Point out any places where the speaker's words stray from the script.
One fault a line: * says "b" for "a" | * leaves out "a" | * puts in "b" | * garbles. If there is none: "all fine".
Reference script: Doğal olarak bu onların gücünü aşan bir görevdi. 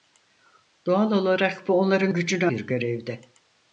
* leaves out "aşan"